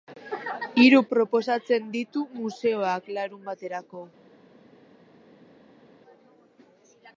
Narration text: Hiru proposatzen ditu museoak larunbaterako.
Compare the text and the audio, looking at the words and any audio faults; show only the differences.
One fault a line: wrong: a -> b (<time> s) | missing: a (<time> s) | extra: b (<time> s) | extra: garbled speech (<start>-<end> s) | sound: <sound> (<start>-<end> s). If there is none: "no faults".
no faults